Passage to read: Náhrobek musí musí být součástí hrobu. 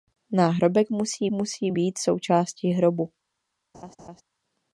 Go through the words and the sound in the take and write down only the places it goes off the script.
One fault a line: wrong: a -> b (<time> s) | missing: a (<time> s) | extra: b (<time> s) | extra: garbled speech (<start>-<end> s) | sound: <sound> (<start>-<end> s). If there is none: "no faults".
sound: laugh (3.7-4.2 s)